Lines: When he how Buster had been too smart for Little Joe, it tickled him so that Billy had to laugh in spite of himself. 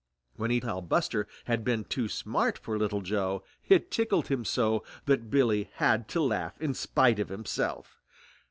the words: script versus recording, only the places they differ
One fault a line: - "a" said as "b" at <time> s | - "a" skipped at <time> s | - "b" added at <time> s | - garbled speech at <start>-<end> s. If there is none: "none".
none